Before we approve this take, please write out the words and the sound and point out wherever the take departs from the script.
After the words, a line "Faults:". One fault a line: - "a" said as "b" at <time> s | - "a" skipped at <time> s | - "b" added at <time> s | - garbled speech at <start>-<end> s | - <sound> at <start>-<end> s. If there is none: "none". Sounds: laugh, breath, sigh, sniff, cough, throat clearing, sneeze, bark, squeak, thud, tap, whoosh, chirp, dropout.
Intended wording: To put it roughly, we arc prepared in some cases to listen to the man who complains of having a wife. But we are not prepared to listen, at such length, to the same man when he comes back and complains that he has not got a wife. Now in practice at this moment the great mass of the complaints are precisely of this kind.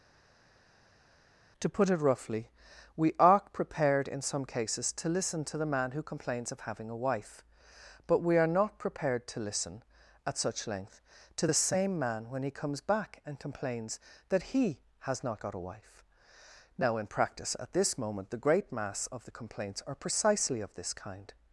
To put it roughly, we are prepared in some cases to listen to the man who complains of having a wife. But we are not prepared to listen, at such length, to the same man when he comes back and complains that he has not got a wife. Now in practice at this moment the great mass of the complaints are precisely of this kind.
Faults:
- "arc" said as "are" at 3.2 s